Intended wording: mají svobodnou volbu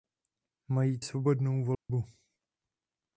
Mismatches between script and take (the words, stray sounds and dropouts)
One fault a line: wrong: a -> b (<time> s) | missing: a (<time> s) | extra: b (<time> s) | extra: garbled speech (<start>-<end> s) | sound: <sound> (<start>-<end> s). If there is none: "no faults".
sound: dropout (1.7-1.9 s)